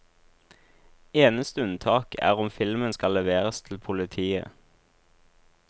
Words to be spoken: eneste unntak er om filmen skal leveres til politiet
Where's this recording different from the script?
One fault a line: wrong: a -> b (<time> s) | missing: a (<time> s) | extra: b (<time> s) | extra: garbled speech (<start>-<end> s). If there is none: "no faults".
no faults